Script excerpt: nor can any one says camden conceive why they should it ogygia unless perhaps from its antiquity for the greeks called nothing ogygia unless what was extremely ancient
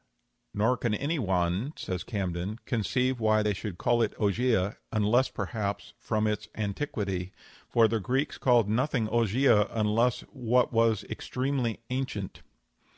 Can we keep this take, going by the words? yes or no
no